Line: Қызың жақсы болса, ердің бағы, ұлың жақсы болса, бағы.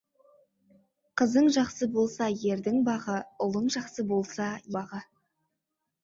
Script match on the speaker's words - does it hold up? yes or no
yes